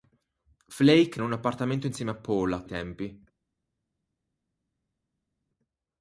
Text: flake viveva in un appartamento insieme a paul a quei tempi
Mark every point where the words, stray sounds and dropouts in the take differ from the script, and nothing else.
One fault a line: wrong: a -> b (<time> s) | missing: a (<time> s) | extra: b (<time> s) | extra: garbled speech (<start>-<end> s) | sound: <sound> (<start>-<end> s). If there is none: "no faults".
missing: viveva (1.2 s)
missing: quei (2.6 s)